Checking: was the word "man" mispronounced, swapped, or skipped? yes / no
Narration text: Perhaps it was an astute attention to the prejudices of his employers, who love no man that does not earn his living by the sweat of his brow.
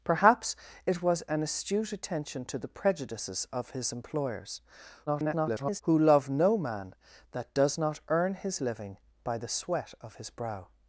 no